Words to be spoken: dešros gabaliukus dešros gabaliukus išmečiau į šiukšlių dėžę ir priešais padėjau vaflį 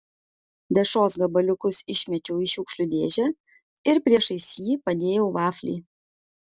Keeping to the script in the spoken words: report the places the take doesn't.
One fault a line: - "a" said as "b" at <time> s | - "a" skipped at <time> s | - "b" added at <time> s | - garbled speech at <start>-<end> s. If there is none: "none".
- "dešros gabaliukus" skipped at 1.8 s
- "jį" added at 4.7 s